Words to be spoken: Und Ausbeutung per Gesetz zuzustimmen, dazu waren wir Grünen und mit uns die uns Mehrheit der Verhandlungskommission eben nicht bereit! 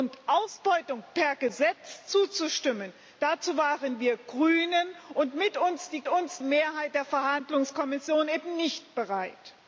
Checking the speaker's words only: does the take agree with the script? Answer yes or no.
yes